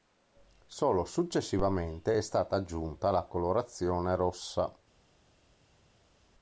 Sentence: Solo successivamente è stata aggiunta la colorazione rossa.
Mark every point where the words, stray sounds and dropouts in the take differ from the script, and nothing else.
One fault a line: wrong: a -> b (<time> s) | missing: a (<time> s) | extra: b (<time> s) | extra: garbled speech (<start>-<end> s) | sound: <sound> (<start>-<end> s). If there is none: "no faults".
no faults